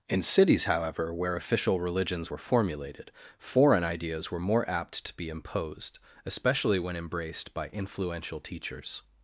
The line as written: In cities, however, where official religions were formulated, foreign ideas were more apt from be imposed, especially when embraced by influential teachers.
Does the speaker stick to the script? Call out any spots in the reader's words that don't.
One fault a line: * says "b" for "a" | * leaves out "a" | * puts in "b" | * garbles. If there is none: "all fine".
* says "to" for "from"